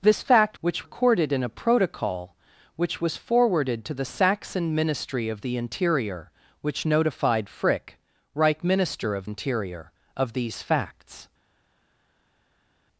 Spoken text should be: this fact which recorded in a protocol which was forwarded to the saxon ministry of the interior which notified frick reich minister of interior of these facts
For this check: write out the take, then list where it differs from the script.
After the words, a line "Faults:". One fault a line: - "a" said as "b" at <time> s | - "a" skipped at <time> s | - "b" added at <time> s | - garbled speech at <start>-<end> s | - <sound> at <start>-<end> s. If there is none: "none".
this fact which recorded in a protocol which was forwarded to the saxon ministry of the interior which notified frick reich minister of interior of these facts
Faults:
none